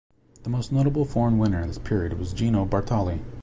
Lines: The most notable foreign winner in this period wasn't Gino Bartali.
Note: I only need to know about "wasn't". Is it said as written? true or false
false